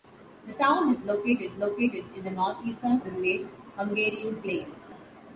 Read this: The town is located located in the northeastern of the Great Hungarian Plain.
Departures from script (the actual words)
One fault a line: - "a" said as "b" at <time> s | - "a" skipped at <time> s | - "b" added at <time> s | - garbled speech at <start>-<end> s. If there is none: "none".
none